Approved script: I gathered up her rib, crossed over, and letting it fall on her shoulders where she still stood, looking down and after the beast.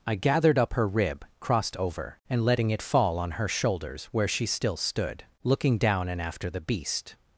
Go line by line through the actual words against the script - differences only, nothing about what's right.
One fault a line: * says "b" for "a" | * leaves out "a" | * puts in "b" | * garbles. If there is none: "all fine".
all fine